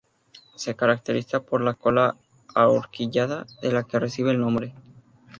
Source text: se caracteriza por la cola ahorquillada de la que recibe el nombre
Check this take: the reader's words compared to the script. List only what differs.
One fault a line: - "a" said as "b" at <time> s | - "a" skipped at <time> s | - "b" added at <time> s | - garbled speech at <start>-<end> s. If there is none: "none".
none